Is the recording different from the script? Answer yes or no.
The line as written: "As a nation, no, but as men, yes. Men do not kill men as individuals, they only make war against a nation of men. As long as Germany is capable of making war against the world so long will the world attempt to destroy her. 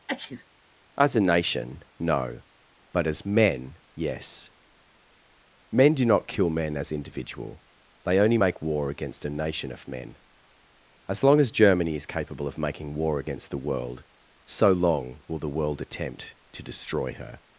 yes